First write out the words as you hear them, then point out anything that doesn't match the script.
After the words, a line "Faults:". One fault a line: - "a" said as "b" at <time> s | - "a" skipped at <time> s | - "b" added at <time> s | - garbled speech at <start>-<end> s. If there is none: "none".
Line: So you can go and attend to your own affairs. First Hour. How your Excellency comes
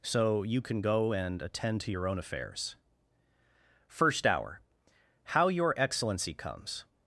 So you can go and attend to your own affairs. First Hour. How your Excellency comes
Faults:
none